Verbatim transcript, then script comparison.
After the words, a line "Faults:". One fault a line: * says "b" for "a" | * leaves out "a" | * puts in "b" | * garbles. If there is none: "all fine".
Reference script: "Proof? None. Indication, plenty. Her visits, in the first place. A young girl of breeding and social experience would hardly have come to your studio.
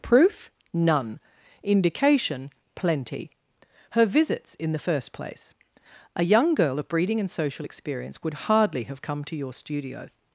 "Proof? None. Indication, plenty. Her visits, in the first place. A young girl of breeding and social experience would hardly have come to your studio.
Faults:
all fine